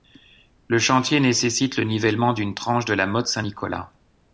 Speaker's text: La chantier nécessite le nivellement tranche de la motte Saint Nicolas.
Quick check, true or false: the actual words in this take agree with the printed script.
false